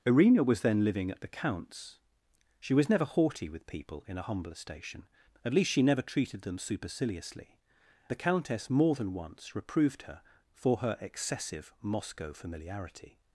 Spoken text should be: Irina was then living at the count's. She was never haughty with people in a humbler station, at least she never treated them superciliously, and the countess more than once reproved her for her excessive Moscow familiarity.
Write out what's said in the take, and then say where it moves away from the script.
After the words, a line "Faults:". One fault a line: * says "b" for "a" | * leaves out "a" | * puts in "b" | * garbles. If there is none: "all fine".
Irina was then living at the count's. She was never haughty with people in a humbler station, at least she never treated them superciliously, the countess more than once reproved her for her excessive Moscow familiarity.
Faults:
* leaves out "and"